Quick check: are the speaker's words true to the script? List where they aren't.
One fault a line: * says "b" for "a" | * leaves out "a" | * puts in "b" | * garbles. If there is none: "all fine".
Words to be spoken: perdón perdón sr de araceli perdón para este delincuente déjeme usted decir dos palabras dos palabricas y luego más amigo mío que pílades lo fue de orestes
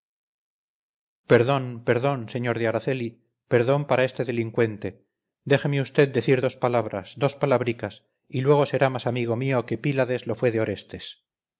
* puts in "será"